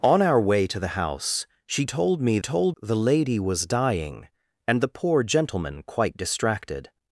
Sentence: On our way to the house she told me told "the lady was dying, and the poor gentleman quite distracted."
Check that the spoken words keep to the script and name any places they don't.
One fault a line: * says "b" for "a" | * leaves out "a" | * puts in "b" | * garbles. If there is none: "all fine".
all fine